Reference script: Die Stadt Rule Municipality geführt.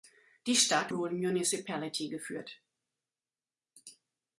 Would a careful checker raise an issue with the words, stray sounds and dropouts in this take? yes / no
no